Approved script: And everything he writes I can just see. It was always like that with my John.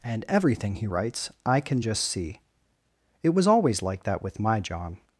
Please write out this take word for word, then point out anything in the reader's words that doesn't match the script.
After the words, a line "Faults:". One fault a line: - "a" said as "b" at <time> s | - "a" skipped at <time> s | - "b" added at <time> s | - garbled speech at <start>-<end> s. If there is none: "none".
And everything he writes I can just see. It was always like that with my John.
Faults:
none